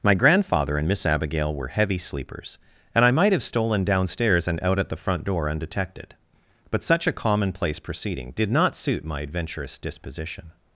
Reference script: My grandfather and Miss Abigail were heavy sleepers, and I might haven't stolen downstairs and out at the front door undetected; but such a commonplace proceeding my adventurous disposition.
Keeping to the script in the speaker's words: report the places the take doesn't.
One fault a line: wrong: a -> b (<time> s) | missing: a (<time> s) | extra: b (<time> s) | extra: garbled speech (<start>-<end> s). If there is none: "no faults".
wrong: haven't -> have (3.3 s)
extra: did not suit (8.3 s)